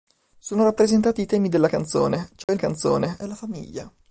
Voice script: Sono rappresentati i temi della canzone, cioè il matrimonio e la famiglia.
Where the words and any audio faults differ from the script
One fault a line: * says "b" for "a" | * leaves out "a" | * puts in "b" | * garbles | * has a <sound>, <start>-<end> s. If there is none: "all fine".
* has a dropout, 2.4-2.5 s
* says "canzone" for "matrimonio"